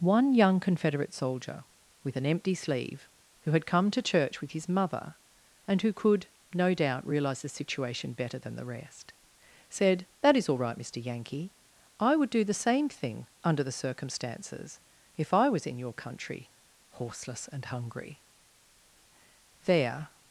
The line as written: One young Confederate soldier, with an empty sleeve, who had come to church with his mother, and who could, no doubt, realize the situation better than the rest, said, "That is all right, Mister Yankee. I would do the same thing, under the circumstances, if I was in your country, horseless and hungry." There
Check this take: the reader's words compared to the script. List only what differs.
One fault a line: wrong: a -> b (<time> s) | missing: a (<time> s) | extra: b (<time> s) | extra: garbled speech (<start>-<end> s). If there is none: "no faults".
no faults